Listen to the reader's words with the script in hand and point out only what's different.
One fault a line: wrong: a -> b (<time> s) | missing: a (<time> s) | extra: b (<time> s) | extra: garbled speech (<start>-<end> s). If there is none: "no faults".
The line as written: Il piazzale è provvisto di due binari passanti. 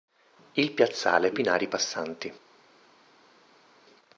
missing: provvisto di due (1.3 s)